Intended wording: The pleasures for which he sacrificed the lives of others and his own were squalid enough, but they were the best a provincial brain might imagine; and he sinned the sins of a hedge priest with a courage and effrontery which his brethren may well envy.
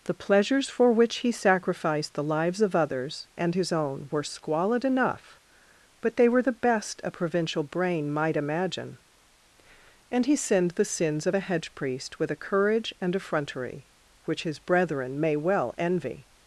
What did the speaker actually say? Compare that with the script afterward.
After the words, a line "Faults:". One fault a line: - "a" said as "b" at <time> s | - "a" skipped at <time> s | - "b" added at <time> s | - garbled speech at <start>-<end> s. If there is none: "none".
The pleasures for which he sacrificed the lives of others and his own were squalid enough, but they were the best a provincial brain might imagine; and he sinned the sins of a hedge priest with a courage and effrontery which his brethren may well envy.
Faults:
none